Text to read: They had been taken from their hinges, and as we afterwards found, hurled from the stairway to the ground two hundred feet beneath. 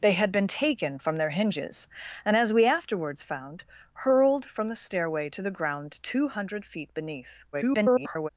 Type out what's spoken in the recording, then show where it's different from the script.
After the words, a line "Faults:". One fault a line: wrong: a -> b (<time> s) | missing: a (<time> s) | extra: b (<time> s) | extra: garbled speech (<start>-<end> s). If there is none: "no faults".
They had been taken from their hinges, and as we afterwards found, hurled from the stairway to the ground two hundred feet beneath. [garbled]
Faults:
extra: garbled speech (7.5-8.3 s)